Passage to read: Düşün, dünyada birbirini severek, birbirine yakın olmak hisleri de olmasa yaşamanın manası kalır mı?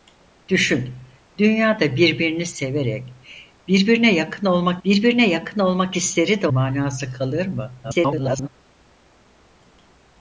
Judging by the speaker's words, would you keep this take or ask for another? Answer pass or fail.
fail